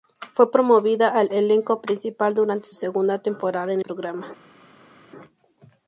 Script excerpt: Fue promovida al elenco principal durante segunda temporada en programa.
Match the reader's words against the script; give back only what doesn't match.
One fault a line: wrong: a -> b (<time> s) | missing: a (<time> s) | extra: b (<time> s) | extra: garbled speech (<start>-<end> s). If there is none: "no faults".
no faults